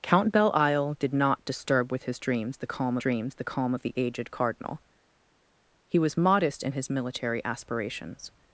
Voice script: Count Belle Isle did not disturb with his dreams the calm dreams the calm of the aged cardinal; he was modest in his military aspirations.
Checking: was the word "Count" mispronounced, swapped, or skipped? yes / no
no